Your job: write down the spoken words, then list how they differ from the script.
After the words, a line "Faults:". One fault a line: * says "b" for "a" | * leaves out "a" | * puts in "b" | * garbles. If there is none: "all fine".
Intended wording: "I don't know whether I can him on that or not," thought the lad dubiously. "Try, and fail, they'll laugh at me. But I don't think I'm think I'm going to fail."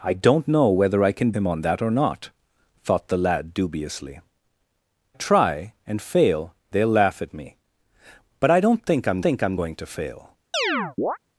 "I don't know whether I can him on that or not," thought the lad dubiously. "Try, and fail, they'll laugh at me. But I don't think I'm think I'm going to fail."
Faults:
all fine